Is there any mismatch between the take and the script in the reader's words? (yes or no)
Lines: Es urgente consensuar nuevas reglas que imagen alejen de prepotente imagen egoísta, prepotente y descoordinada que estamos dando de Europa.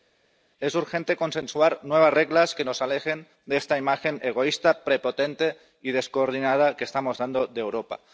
yes